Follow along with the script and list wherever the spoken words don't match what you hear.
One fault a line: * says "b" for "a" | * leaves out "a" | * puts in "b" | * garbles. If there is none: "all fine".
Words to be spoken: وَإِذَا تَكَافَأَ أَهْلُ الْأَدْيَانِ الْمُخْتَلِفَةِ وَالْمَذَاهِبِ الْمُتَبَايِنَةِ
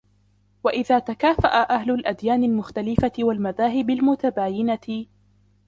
all fine